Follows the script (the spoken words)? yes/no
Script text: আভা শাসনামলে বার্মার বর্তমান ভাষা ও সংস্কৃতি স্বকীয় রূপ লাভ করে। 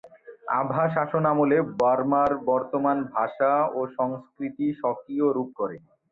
no